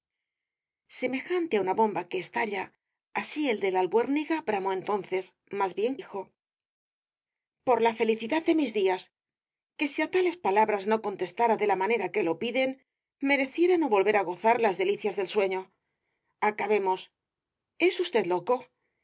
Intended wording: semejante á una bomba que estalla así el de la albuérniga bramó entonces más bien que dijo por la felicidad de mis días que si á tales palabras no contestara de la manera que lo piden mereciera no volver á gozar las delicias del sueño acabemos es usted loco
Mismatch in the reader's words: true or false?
true